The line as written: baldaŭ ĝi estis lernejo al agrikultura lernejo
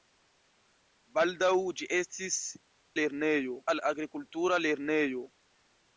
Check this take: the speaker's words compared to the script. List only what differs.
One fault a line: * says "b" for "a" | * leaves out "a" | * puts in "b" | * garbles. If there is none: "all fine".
all fine